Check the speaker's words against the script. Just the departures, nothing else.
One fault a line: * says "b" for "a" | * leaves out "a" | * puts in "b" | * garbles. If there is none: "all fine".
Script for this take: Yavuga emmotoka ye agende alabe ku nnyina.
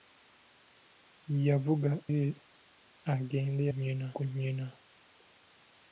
* leaves out "emmotoka"
* says "nnyina" for "alabe"